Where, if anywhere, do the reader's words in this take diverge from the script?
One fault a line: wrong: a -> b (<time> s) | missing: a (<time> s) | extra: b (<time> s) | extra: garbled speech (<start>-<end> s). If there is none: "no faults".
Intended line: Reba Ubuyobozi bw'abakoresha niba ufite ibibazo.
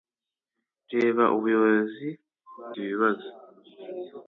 missing: bw'abakoresha niba ufite (2.1 s)